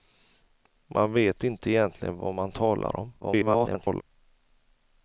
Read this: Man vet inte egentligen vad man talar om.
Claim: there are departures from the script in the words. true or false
true